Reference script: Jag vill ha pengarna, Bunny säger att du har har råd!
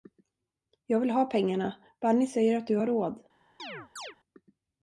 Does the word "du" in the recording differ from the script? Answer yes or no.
no